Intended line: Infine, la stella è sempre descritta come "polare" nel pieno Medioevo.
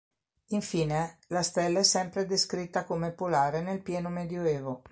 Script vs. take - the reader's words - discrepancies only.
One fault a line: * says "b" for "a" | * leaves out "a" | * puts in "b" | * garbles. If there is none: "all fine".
all fine